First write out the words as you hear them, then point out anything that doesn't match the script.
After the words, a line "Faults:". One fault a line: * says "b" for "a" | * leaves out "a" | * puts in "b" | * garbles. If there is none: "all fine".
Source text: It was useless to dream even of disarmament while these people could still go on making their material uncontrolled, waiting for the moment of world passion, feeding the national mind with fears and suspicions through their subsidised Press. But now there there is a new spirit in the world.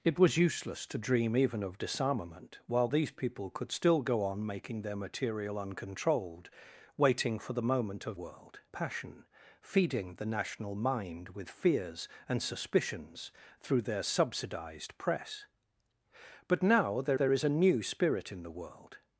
It was useless to dream even of disarmament while these people could still go on making their material uncontrolled, waiting for the moment of world passion, feeding the national mind with fears and suspicions through their subsidised Press. But now there there is a new spirit in the world.
Faults:
all fine